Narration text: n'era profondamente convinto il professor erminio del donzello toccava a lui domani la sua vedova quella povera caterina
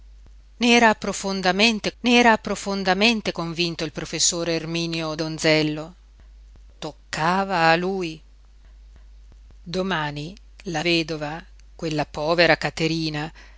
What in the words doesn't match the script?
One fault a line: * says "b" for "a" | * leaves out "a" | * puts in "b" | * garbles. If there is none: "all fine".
* puts in "n'era profondamente"
* leaves out "del"
* leaves out "sua"